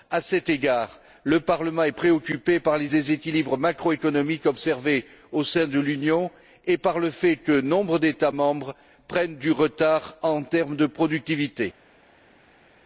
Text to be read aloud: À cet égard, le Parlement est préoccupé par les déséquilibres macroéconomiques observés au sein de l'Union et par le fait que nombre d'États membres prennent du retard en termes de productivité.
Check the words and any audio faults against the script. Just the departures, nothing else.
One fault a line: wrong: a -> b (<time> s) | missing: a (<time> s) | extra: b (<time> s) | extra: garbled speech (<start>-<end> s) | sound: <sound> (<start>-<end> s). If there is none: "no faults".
no faults